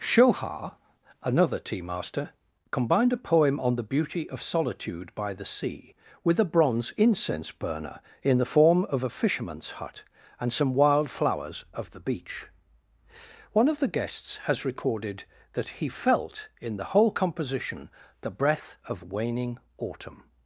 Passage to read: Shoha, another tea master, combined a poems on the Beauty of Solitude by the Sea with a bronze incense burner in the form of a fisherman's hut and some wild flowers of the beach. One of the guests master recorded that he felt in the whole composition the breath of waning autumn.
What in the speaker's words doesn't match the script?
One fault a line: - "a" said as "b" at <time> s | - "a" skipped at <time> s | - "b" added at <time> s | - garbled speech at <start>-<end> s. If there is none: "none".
- "poems" said as "poem" at 3.2 s
- "master" said as "has" at 14.5 s